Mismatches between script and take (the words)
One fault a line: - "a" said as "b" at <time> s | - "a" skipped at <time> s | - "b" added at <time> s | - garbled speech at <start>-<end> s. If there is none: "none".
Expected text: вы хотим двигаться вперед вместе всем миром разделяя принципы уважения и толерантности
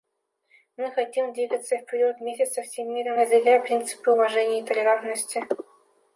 - "вы" said as "мы" at 0.8 s
- "со" added at 2.4 s